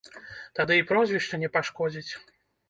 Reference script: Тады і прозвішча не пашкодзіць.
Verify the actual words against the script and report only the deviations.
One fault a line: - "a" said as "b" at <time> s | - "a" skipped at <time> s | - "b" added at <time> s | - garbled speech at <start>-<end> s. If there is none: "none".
none